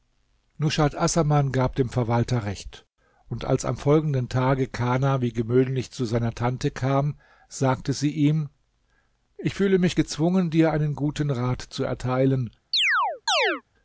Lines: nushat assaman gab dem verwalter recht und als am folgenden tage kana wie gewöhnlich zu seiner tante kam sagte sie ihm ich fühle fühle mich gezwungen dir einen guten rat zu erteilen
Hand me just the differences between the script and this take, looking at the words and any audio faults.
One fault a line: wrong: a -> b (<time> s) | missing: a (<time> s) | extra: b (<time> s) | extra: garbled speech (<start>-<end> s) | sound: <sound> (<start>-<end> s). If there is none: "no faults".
missing: fühle (9.8 s)
sound: chirp (12.7-13.6 s)